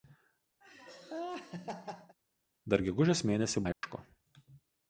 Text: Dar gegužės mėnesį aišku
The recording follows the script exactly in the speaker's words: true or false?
true